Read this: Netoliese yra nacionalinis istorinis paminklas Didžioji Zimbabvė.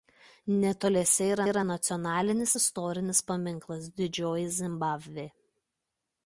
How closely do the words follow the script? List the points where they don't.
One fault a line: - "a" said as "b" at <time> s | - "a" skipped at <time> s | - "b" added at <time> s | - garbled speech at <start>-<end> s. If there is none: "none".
- "yra" added at 1.5 s